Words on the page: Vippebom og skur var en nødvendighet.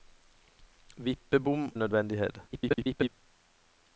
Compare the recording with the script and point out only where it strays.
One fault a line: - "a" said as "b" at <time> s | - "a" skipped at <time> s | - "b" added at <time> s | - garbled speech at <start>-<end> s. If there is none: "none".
- "og skur var" skipped at 1.7 s
- garbled speech at 2.5-3.1 s